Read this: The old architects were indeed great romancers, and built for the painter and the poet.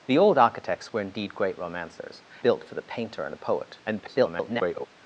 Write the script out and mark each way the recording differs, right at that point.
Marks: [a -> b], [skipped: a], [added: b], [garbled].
The old architects were indeed great romancers, [skipped: and] built for the painter and the poet. [garbled]